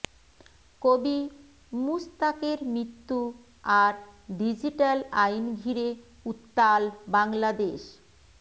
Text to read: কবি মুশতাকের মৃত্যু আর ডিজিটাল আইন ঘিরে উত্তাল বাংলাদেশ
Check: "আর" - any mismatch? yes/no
no